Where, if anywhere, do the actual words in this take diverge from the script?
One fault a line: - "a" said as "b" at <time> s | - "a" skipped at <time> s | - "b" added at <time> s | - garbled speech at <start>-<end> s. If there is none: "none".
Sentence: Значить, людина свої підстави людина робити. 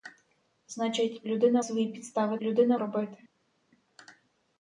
none